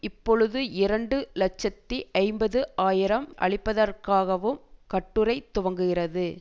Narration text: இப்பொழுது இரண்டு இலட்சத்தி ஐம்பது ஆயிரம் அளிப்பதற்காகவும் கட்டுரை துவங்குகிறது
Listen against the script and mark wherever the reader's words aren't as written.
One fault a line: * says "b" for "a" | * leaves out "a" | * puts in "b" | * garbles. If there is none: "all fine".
all fine